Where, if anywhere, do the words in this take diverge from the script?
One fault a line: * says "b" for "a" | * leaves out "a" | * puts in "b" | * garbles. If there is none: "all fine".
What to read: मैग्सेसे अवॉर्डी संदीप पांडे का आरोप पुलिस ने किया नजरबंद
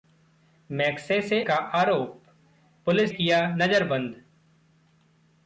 * leaves out "अवॉर्डी संदीप पांडे"
* leaves out "ने"